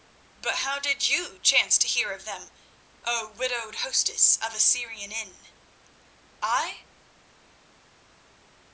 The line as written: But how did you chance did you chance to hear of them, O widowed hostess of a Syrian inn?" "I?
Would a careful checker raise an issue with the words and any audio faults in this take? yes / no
yes